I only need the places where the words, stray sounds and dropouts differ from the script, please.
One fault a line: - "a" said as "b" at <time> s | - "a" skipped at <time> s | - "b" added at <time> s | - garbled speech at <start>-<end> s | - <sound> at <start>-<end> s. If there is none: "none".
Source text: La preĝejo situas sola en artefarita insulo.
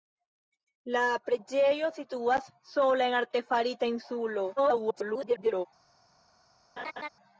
- garbled speech at 4.6-5.7 s
- laugh at 6.8-7.1 s